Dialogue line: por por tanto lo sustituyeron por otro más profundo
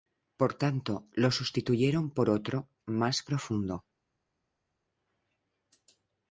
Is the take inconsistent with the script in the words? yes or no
yes